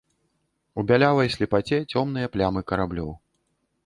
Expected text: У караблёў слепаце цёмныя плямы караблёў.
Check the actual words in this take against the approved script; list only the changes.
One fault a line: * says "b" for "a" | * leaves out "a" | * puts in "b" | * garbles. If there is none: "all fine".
* says "бялявай" for "караблёў"